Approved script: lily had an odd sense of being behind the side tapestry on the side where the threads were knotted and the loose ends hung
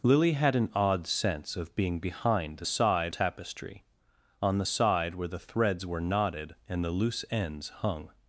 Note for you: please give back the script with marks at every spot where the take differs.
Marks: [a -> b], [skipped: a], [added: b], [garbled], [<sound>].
lily had an odd sense of being behind the side tapestry on the side where the threads were knotted and the loose ends hung